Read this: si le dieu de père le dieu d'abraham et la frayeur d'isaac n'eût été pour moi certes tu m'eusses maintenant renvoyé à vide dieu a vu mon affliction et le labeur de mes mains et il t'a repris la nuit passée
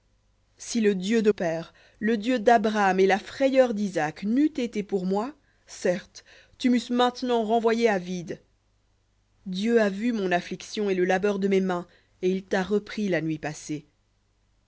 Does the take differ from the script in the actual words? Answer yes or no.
no